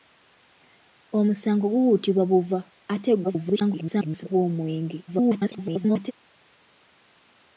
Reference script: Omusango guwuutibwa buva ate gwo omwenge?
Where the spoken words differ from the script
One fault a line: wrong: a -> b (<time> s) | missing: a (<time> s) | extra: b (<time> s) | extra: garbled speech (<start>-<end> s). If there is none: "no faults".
extra: garbled speech (3.2-4.2 s)
extra: garbled speech (5.1-6.1 s)